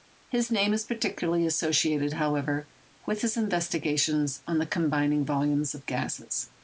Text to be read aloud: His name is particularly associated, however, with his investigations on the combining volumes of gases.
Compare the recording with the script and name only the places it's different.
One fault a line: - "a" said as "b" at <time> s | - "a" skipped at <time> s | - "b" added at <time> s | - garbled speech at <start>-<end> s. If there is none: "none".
none